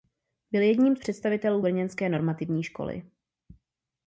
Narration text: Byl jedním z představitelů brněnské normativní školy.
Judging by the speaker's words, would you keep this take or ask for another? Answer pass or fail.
pass